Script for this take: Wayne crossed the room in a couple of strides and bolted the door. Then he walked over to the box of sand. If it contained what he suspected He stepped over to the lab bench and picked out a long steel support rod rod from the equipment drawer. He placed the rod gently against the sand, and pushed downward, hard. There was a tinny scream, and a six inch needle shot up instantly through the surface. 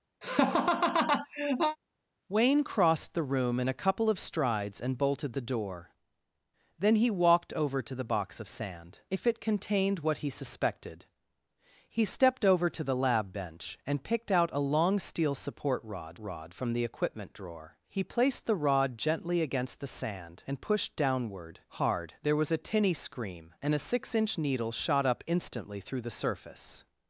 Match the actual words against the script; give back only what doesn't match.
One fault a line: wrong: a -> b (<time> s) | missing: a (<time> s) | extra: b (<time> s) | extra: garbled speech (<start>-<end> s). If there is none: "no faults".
no faults